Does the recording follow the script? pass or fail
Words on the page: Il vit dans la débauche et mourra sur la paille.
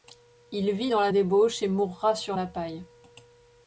pass